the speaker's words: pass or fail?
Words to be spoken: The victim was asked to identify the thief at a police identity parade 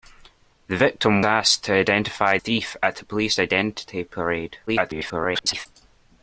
fail